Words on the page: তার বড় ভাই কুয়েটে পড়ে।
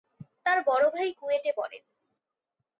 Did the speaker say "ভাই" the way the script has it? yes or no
yes